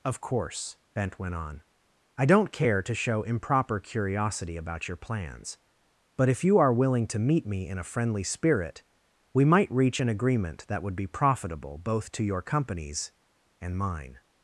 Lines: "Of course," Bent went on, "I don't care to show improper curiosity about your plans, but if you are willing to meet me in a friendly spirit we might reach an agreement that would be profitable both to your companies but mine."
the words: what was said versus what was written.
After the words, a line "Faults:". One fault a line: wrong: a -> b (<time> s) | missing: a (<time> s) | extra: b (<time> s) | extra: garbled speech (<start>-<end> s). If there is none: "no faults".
"Of course," Bent went on, "I don't care to show improper curiosity about your plans, but if you are willing to meet me in a friendly spirit we might reach an agreement that would be profitable both to your companies and mine."
Faults:
wrong: but -> and (13.6 s)